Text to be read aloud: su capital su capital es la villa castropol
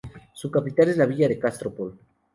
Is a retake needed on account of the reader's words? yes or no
yes